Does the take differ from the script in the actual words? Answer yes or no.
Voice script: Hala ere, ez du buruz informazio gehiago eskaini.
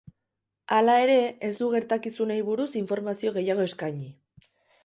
yes